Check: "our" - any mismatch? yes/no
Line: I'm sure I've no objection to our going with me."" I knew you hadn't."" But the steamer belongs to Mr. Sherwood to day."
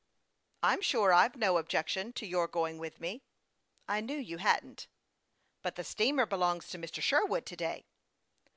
yes